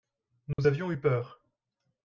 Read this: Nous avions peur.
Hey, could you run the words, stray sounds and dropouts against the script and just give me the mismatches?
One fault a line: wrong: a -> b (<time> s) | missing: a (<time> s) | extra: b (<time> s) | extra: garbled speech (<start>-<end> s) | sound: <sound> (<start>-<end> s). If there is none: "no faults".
sound: dropout (0.5-0.6 s)
extra: eu (0.9 s)